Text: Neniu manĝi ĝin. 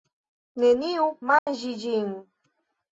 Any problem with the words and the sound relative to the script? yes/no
yes